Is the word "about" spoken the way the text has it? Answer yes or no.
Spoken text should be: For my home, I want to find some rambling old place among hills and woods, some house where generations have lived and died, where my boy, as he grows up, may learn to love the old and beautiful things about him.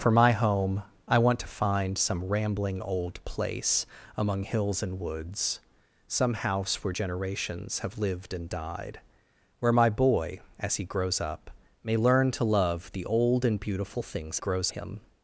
no